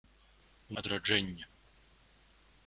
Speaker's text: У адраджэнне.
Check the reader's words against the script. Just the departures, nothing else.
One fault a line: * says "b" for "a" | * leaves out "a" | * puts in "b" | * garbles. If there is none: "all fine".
all fine